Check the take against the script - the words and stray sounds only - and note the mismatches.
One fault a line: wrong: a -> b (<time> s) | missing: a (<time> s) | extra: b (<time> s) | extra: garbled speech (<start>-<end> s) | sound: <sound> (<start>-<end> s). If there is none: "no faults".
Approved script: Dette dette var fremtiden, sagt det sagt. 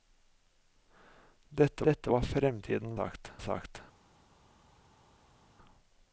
no faults